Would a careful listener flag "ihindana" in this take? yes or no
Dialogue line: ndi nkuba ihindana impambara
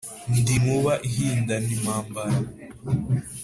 no